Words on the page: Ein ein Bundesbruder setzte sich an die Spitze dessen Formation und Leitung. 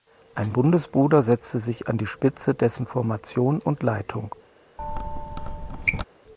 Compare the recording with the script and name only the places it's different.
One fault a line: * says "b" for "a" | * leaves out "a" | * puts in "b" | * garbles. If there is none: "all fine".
* leaves out "ein"